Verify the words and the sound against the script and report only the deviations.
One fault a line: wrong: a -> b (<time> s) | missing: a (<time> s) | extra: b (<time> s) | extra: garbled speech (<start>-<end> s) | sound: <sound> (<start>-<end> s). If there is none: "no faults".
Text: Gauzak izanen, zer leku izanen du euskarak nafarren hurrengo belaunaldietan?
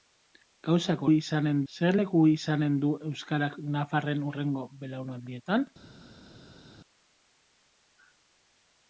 no faults